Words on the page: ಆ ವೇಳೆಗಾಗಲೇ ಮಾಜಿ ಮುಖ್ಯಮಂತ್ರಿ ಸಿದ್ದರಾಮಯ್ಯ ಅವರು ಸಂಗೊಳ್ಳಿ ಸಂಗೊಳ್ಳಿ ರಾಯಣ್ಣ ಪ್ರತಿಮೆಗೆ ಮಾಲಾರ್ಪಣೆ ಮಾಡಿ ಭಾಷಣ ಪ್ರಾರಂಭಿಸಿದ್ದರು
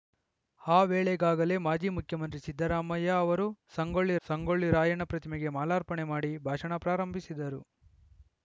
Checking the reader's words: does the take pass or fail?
pass